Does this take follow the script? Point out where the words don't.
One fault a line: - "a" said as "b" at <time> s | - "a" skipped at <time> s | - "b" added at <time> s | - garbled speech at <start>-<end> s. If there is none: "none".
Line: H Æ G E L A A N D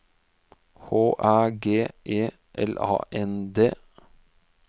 - "A" skipped at 2.9 s